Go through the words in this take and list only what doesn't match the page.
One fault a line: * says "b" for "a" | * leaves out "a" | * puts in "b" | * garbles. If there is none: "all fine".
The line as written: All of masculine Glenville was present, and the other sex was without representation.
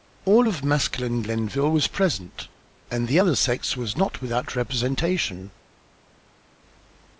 * puts in "not"